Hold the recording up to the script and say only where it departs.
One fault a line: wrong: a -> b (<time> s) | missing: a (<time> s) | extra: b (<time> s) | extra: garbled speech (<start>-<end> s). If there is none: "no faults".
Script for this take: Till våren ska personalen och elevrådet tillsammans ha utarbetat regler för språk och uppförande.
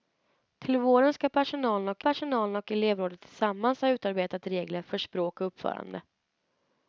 extra: personalen och (2.0 s)